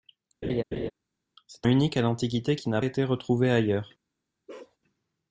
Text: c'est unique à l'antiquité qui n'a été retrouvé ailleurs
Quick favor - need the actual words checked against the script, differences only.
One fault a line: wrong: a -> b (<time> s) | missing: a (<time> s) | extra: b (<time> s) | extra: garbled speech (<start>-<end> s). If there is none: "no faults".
no faults